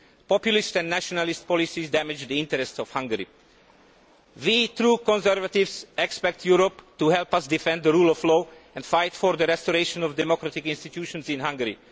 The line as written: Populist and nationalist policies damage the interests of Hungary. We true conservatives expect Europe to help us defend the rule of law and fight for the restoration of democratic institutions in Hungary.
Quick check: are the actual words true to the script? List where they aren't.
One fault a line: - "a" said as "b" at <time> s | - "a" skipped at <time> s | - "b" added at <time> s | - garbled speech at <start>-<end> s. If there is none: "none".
none